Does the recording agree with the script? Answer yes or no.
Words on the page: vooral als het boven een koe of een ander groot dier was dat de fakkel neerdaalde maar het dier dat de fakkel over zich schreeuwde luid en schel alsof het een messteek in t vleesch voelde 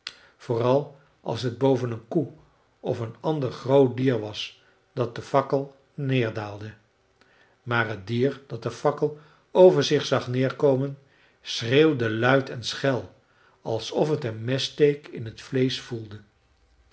no